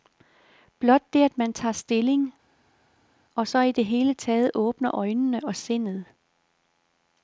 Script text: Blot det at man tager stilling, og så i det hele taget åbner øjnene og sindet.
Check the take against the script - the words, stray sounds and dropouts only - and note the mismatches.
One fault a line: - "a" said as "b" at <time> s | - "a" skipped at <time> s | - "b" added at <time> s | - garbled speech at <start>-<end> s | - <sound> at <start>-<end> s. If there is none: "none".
none